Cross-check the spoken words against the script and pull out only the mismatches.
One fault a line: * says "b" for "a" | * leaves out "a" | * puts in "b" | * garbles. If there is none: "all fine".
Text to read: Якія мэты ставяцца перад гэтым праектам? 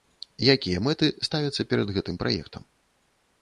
all fine